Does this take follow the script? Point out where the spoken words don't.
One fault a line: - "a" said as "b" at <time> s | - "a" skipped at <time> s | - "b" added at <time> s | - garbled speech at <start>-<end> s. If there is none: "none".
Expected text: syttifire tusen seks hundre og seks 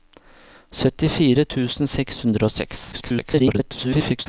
- garbled speech at 2.9-4.3 s